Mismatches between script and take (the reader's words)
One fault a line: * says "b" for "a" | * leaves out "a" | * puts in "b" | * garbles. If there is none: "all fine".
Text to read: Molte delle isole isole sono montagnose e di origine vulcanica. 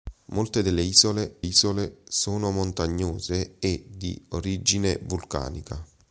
all fine